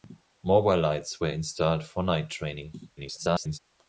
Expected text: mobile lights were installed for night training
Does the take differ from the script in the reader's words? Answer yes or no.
yes